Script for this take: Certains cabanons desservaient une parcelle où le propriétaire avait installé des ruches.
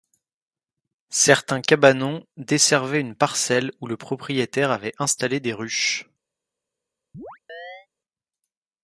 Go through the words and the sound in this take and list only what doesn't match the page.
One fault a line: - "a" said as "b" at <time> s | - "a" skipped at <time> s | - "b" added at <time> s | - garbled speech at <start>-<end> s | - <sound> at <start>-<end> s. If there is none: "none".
- chirp at 7.1-7.9 s